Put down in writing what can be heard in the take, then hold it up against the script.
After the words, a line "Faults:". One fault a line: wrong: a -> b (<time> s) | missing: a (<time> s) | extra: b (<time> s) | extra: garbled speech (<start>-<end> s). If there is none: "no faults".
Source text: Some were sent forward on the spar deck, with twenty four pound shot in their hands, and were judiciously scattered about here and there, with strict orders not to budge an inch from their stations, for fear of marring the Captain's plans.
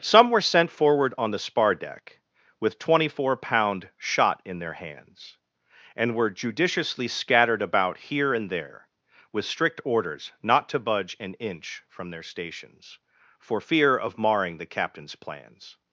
Some were sent forward on the spar deck, with twenty four pound shot in their hands, and were judiciously scattered about here and there, with strict orders not to budge an inch from their stations, for fear of marring the Captain's plans.
Faults:
no faults